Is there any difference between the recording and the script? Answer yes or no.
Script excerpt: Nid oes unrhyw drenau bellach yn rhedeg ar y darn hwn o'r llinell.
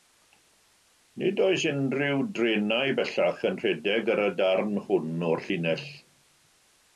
no